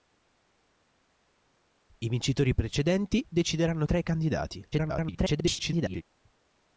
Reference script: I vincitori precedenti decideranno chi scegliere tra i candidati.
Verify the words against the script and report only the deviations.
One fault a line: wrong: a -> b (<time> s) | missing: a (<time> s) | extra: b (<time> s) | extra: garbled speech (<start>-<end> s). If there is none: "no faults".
missing: chi scegliere (3.9 s)
extra: garbled speech (4.7-6.0 s)